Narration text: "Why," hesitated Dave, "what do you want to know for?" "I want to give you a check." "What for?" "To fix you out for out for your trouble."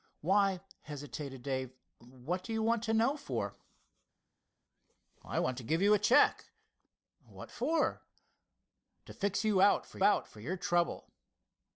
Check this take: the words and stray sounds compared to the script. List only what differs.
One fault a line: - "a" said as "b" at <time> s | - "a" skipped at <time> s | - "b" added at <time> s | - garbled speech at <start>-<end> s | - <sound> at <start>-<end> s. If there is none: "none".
none